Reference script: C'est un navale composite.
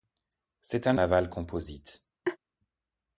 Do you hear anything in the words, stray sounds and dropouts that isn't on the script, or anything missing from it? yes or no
yes